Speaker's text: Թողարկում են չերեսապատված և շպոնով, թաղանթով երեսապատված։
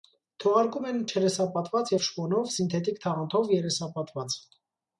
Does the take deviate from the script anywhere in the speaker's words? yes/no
yes